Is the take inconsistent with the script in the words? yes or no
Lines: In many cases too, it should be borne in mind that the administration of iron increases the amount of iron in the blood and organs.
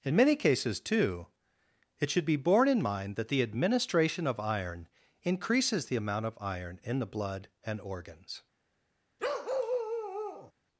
no